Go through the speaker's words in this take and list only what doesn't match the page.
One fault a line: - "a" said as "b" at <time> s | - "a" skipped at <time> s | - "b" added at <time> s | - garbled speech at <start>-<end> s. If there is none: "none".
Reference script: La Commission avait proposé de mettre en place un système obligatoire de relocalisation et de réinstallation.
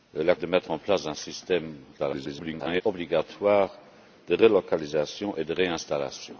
- "Commission avait proposé" skipped at 0.3 s
- garbled speech at 2.0-2.8 s